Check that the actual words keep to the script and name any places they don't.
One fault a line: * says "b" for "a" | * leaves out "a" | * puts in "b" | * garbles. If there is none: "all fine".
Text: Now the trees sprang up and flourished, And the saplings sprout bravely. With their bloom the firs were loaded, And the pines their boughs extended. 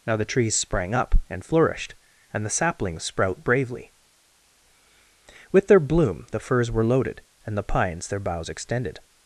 all fine